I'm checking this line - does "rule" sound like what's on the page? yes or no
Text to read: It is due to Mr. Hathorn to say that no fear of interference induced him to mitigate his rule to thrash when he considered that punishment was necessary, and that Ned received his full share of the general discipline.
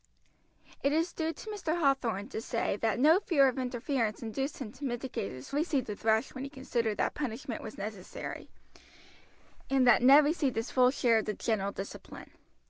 no